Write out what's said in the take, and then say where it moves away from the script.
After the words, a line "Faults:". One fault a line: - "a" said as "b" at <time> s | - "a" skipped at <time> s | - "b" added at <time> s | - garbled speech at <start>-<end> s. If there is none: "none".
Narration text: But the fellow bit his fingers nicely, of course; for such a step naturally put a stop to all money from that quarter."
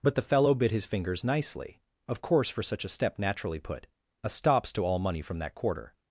But the fellow bit his fingers nicely, of course; for such a step naturally put a stops to all money from that quarter."
Faults:
- "stop" said as "stops" at 4.3 s